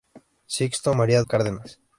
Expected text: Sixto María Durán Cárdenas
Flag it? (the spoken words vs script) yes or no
yes